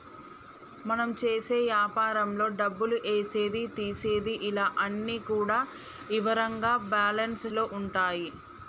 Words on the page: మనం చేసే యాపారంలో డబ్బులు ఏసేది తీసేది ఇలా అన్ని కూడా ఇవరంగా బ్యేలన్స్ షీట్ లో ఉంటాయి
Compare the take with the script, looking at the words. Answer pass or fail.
fail